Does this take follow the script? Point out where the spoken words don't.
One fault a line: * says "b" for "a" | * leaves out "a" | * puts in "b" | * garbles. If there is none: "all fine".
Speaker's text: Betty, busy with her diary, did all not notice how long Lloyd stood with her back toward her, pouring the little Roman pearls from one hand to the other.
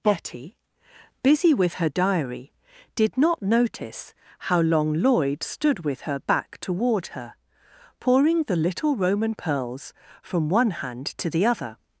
* leaves out "all"